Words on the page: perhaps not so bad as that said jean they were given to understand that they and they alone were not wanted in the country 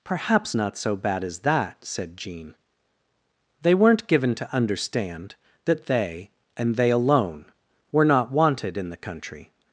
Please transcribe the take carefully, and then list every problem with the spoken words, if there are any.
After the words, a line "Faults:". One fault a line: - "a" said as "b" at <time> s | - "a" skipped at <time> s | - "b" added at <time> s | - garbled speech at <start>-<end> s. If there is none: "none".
perhaps not so bad as that said jean they weren't given to understand that they and they alone were not wanted in the country
Faults:
- "were" said as "weren't" at 3.7 s